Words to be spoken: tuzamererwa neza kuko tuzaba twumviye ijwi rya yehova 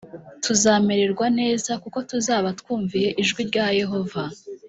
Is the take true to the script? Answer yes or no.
yes